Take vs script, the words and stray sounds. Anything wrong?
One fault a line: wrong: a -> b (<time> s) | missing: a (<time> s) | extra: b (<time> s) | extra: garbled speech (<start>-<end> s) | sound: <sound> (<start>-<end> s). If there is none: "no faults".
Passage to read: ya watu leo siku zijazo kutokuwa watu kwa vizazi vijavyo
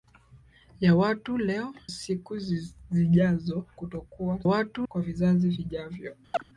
sound: chirp (6.3-6.4 s)